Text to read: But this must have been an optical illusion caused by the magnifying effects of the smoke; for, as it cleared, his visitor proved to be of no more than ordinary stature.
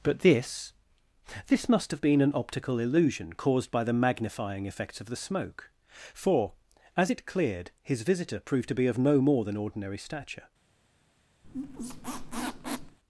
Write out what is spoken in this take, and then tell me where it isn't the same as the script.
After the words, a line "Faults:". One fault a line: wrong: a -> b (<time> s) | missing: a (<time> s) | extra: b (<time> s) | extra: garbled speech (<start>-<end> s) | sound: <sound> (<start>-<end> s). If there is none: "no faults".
But this this must have been an optical illusion caused by the magnifying effects of the smoke; for, as it cleared, his visitor proved to be of no more than ordinary stature.
Faults:
extra: this (1.5 s)
sound: squeak (11.4-13.0 s)